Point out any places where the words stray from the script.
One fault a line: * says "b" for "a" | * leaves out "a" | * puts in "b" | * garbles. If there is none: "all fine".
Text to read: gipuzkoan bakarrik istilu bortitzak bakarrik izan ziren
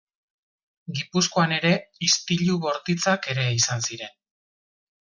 * says "ere" for "bakarrik"
* says "ere" for "bakarrik"